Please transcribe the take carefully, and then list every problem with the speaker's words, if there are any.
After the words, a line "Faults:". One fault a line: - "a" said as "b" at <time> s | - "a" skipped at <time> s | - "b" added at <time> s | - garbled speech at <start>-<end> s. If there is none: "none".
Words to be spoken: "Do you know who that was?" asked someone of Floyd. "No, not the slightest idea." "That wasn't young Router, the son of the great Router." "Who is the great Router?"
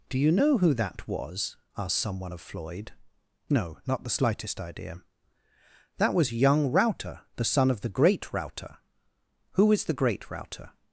"Do you know who that was?" asked someone of Floyd. "No, not the slightest idea." "That was young Router, the son of the great Router." "Who is the great Router?"
Faults:
- "wasn't" said as "was" at 6.1 s